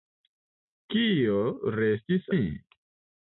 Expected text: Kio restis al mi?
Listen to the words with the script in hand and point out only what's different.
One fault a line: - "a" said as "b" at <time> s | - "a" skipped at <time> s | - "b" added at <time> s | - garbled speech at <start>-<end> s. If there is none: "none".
- "al" skipped at 2.3 s